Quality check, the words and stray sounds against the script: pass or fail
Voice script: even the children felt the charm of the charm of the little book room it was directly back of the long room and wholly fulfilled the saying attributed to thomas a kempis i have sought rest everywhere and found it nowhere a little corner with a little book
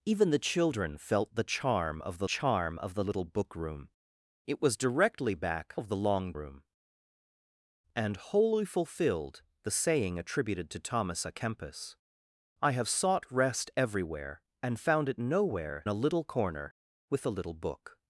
pass